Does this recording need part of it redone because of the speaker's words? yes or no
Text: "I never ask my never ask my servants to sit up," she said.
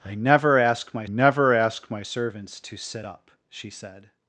no